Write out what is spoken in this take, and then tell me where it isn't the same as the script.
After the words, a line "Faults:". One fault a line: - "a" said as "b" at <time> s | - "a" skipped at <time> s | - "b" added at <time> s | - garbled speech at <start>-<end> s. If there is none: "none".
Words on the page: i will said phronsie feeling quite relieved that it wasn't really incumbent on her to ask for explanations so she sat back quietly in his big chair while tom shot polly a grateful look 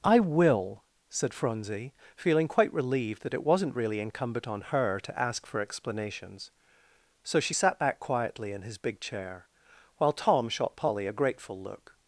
i will said phronsie feeling quite relieved that it wasn't really incumbent on her to ask for explanations so she sat back quietly in his big chair while tom shot polly a grateful look
Faults:
none